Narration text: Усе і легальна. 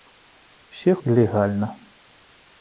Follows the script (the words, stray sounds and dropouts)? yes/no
yes